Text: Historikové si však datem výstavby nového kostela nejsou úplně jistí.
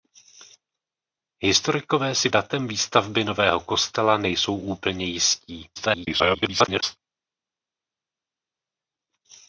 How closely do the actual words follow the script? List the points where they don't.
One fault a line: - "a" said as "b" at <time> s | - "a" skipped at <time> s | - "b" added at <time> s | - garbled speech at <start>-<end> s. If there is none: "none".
- "však" skipped at 2.3 s
- garbled speech at 5.8-7.0 s